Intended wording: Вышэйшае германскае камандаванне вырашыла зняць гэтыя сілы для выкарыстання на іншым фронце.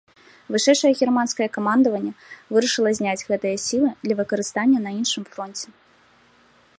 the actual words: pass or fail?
pass